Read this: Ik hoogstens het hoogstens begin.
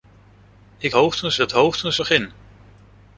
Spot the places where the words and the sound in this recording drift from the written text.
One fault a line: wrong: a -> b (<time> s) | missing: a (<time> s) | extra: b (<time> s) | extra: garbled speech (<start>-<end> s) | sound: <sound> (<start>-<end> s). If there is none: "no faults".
no faults